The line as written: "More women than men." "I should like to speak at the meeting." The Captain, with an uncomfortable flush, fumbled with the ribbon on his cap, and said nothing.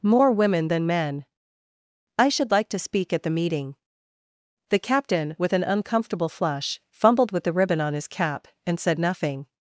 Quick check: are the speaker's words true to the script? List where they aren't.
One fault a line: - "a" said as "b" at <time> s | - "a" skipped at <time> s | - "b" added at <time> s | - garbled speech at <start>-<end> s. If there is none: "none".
none